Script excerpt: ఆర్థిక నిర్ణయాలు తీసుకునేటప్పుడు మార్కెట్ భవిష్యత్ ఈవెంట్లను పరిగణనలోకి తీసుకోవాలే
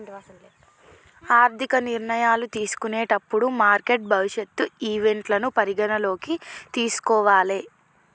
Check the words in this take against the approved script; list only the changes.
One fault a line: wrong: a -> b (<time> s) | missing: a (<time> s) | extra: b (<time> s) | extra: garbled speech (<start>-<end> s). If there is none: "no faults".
no faults